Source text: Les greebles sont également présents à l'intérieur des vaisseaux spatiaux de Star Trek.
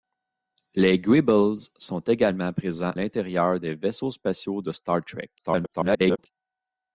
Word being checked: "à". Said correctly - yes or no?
no